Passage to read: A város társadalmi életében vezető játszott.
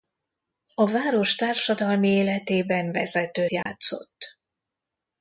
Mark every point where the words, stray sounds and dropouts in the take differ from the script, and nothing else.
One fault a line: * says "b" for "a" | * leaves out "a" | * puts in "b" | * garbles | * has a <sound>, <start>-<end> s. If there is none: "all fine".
* has a dropout, 3.6-3.7 s